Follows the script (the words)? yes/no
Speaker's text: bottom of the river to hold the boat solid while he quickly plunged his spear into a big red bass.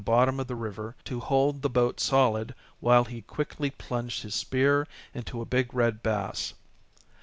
yes